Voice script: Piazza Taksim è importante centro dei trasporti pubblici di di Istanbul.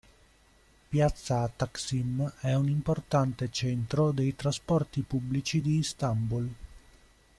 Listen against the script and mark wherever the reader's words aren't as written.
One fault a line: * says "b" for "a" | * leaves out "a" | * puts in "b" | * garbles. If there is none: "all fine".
* puts in "un"
* leaves out "di"